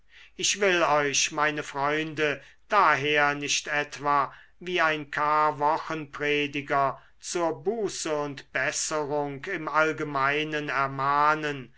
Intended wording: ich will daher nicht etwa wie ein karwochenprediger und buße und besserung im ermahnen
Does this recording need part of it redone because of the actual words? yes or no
yes